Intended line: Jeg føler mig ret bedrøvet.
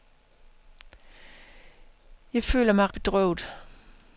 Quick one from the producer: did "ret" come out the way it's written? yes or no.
no